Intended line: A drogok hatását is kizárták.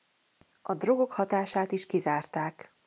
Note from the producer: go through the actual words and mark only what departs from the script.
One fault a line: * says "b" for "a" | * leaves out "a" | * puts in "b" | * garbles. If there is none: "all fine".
all fine